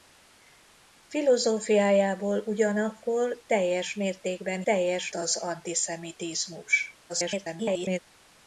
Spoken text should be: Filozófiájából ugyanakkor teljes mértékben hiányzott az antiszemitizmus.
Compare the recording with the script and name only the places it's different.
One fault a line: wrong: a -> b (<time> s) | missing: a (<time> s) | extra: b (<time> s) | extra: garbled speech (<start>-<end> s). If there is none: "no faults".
wrong: hiányzott -> teljes (4.6 s)
extra: garbled speech (7.1-8.0 s)